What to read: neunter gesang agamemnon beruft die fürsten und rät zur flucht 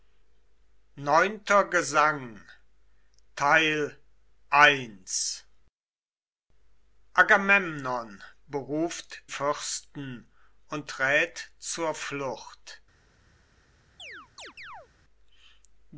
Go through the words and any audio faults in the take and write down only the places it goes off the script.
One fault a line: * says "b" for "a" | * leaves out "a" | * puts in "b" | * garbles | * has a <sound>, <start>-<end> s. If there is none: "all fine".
* leaves out "die"
* has a chirp, 14.0-14.9 s